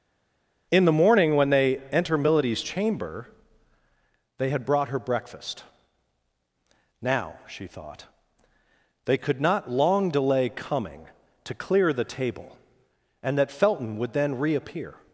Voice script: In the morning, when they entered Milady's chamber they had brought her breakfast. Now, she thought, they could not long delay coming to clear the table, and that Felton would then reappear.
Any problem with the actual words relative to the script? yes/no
yes